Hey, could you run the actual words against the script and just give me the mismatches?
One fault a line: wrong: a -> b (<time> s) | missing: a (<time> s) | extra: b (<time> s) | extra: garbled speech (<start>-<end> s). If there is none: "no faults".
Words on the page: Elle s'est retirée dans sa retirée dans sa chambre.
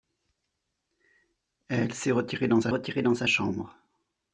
no faults